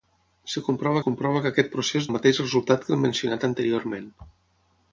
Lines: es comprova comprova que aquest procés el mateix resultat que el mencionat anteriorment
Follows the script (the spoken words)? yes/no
yes